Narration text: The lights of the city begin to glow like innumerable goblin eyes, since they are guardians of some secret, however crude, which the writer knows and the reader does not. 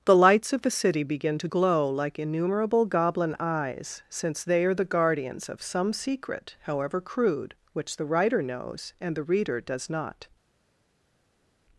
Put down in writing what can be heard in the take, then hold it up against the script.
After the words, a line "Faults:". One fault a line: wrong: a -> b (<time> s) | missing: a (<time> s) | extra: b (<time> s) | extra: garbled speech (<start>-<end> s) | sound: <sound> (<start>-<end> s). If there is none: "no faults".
The lights of the city begin to glow like innumerable goblin eyes, since they are the guardians of some secret, however crude, which the writer knows and the reader does not.
Faults:
extra: the (4.7 s)